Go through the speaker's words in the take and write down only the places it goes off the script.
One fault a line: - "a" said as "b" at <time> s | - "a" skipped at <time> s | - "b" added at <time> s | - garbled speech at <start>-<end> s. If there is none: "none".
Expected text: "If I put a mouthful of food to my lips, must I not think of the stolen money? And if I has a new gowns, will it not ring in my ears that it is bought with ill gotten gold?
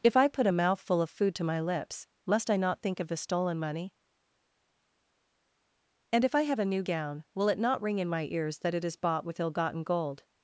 - "has" said as "have" at 6.4 s
- "gowns" said as "gown" at 6.8 s